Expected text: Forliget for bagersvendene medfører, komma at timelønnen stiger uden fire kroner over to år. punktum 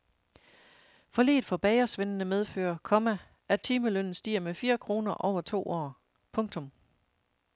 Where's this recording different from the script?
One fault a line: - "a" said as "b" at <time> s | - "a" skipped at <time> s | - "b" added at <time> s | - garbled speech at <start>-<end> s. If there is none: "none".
- "uden" said as "med" at 4.4 s